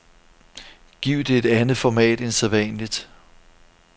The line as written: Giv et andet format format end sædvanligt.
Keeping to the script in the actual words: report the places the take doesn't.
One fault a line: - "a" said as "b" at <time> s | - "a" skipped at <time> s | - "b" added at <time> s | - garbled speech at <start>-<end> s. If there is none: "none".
- "det" added at 1.2 s
- "format" skipped at 2.2 s